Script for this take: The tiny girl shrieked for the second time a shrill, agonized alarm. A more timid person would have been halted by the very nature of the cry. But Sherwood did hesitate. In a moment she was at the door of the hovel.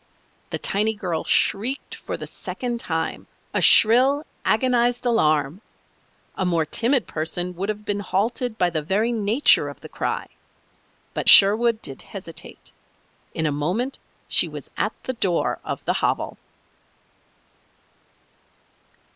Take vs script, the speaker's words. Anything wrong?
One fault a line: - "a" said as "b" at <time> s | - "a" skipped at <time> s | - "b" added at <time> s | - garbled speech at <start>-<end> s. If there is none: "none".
none